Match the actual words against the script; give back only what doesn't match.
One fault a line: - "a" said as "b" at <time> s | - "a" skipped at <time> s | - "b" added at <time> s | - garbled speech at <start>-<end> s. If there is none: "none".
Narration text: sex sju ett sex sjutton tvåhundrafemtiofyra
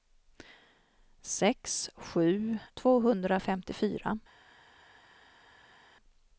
- "ett sex sjutton" skipped at 2.6 s